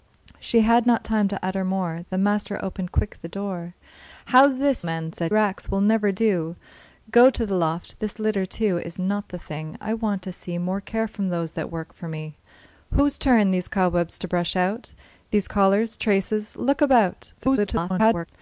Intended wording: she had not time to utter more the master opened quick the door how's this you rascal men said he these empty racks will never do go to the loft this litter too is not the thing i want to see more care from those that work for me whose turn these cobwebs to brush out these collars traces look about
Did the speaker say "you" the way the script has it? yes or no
no